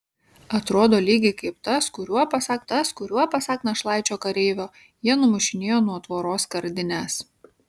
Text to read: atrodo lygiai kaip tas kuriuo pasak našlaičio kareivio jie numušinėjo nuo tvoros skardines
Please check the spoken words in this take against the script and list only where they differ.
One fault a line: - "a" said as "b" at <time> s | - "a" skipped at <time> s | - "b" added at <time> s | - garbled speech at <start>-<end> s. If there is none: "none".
- "tas kuriuo pasak" added at 2.7 s